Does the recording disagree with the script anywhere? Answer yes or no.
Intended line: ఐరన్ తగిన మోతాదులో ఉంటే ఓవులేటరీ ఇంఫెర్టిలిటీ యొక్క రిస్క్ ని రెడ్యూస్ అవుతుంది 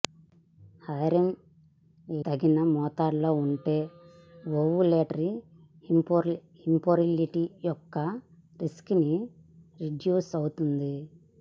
no